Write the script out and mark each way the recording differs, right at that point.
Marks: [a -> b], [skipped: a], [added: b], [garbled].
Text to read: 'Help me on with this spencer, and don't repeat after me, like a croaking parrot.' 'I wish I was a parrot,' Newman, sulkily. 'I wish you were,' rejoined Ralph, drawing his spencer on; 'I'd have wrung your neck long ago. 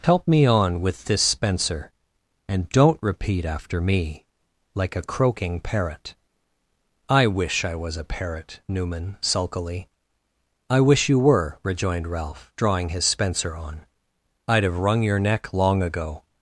'Help me on with this spencer, and don't repeat after me, like a croaking parrot.' 'I wish I was a parrot,' Newman, sulkily. 'I wish you were,' rejoined Ralph, drawing his spencer on; 'I'd have wrung your neck long ago.